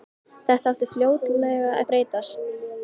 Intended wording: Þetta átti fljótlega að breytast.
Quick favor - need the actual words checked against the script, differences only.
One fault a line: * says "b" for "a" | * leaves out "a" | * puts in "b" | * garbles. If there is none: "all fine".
all fine